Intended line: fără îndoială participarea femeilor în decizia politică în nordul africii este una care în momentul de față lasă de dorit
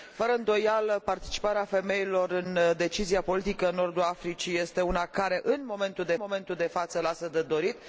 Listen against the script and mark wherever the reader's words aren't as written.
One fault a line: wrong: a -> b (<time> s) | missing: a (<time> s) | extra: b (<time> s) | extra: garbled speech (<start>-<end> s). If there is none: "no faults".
extra: momentul de (6.2 s)